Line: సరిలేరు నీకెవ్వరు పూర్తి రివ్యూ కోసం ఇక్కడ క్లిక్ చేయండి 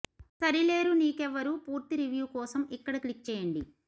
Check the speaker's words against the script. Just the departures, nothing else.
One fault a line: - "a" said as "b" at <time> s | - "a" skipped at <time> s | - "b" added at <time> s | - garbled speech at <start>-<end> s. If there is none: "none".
none